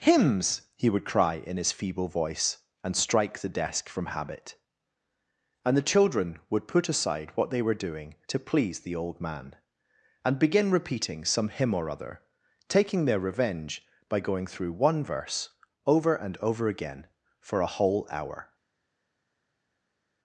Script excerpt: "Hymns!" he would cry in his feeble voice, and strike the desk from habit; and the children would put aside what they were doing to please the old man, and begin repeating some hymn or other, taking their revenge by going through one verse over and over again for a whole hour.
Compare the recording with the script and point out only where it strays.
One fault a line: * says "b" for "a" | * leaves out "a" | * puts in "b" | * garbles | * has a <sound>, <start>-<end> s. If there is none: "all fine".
all fine